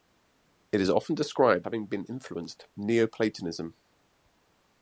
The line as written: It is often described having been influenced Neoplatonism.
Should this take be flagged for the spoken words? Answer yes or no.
no